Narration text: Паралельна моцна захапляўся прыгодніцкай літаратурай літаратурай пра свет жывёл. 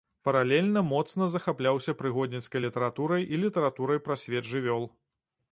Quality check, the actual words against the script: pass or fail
fail